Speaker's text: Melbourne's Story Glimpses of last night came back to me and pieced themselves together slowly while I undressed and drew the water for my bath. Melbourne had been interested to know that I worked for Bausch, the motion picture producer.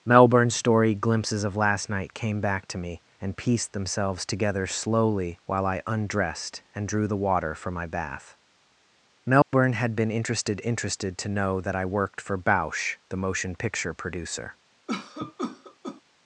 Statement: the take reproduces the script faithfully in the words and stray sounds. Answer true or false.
false